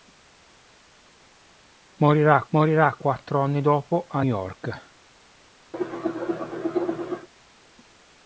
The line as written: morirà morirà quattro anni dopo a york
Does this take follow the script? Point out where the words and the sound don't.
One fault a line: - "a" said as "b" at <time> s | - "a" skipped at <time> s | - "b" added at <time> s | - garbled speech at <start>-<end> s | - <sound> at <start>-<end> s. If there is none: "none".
- cough at 5.7-7.3 s